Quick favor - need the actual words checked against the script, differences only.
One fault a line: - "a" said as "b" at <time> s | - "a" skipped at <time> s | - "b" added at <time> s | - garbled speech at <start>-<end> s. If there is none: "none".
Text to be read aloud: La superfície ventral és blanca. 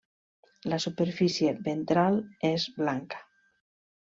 none